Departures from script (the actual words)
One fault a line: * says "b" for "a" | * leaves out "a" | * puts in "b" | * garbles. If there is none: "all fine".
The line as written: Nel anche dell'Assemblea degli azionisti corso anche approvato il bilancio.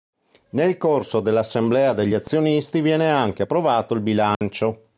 * says "corso" for "anche"
* says "viene" for "corso"